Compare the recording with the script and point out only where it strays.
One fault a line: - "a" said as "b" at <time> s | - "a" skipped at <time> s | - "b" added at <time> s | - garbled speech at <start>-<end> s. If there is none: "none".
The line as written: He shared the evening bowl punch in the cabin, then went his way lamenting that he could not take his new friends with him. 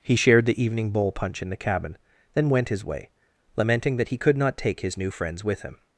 none